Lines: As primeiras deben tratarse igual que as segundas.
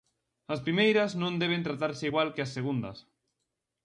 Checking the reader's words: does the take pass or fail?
fail